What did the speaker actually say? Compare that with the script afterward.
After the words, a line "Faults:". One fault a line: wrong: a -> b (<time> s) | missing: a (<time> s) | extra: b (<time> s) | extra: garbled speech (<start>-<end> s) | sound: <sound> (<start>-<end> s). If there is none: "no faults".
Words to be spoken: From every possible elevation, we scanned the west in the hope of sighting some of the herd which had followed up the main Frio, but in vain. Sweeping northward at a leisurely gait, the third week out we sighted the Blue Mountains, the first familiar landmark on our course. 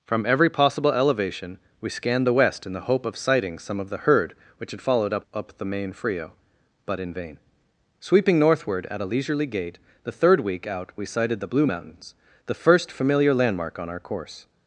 From every possible elevation, we scanned the west in the hope of sighting some of the herd which had followed up up the main Frio, but in vain. Sweeping northward at a leisurely gait, the third week out we sighted the Blue Mountains, the first familiar landmark on our course.
Faults:
extra: up (5.3 s)